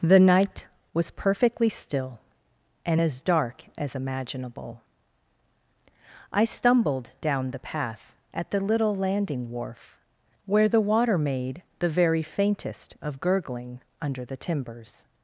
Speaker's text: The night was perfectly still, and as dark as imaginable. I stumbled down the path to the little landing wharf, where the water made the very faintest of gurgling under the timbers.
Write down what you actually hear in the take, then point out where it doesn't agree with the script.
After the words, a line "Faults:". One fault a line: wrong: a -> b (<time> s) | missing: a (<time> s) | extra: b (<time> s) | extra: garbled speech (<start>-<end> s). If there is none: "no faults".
The night was perfectly still, and as dark as imaginable. I stumbled down the path at the little landing wharf, where the water made the very faintest of gurgling under the timbers.
Faults:
wrong: to -> at (8.3 s)